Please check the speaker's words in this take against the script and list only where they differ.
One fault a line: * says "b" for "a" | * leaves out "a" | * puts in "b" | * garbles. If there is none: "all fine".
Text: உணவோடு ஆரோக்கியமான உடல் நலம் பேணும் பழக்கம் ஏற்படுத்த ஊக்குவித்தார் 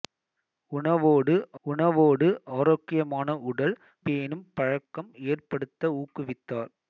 * puts in "உணவோடு"
* leaves out "நலம்"